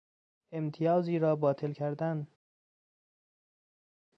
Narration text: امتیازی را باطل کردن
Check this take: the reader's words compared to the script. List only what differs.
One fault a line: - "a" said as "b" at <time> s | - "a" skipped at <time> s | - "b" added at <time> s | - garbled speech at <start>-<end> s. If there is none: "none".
none